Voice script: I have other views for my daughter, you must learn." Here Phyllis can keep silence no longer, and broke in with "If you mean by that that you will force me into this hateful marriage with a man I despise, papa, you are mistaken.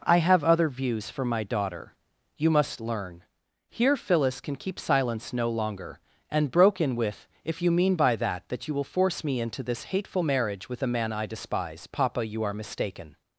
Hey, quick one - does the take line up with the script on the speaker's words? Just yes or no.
yes